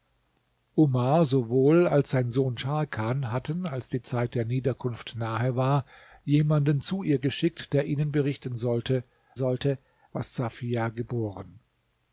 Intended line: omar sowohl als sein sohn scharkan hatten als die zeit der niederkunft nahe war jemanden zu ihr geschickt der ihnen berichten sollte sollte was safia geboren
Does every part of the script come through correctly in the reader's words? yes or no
yes